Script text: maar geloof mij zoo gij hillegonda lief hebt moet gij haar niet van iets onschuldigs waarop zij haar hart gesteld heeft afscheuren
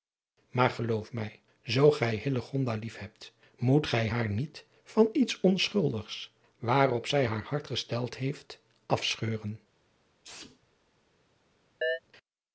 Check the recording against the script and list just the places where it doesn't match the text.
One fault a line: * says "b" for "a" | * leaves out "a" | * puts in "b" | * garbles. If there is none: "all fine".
all fine